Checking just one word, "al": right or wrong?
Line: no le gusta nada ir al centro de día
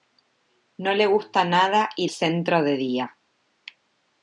wrong